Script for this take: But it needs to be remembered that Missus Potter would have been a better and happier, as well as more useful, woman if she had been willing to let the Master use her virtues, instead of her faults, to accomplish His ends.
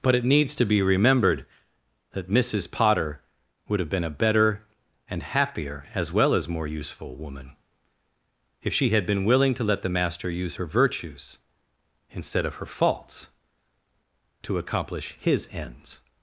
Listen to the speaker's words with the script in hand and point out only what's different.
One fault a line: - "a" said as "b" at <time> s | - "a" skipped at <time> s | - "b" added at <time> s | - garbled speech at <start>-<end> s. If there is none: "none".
none